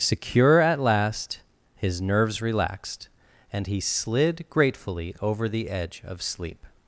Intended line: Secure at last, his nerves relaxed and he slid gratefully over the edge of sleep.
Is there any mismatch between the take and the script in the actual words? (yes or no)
no